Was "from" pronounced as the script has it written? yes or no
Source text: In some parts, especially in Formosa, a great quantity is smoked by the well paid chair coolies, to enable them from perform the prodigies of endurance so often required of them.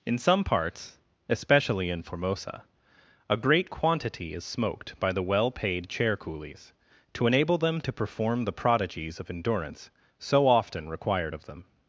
no